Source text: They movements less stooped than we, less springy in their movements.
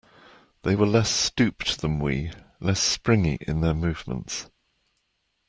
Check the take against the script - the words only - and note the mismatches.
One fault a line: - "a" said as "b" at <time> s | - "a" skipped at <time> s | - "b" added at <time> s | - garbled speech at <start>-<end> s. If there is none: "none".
- "movements" said as "were" at 0.7 s